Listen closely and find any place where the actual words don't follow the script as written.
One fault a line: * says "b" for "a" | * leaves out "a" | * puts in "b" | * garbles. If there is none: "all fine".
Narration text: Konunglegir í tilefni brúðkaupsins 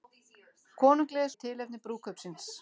all fine